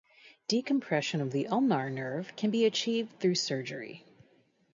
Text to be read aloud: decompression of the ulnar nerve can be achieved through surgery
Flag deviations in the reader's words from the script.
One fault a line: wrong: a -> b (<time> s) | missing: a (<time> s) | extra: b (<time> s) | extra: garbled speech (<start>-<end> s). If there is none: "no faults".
no faults